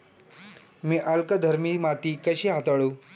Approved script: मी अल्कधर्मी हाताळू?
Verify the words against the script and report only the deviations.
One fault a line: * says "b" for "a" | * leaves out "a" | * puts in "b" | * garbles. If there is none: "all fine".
* puts in "माती कशी"